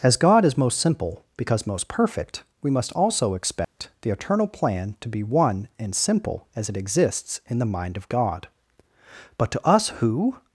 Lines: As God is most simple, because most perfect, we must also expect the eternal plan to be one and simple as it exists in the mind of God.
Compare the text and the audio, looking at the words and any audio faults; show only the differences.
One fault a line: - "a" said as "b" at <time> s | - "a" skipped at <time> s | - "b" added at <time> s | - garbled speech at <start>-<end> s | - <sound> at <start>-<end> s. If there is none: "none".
- dropout at 3.6-3.8 s
- "But to us who" added at 9.4 s